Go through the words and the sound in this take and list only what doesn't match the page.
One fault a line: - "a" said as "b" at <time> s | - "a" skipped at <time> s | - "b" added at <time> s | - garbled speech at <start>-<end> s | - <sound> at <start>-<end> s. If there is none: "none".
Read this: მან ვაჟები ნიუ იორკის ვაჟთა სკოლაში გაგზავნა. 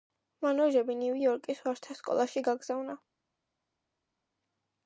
none